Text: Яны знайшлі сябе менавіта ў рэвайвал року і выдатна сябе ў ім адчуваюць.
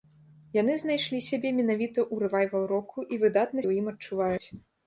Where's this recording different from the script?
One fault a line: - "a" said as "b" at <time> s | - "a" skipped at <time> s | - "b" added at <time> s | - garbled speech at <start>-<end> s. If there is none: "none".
- "сябе" skipped at 3.6 s